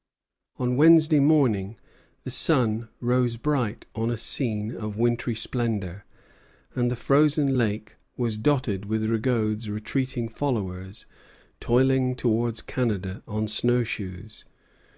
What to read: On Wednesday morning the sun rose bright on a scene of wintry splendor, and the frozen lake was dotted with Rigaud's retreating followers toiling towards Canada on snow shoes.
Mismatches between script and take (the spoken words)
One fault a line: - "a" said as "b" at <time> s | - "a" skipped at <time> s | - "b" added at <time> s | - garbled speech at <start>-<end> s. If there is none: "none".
none